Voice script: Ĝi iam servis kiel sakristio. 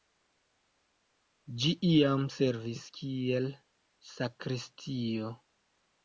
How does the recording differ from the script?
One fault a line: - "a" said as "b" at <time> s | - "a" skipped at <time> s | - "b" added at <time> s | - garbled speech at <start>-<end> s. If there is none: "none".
none